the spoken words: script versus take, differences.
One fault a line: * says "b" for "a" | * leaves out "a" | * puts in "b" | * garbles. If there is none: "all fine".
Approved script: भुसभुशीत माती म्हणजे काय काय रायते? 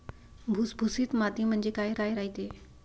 all fine